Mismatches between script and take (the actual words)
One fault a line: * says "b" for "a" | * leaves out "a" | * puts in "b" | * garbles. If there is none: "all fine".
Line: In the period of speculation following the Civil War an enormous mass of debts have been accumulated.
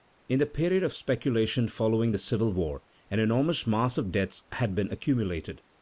* says "had" for "have"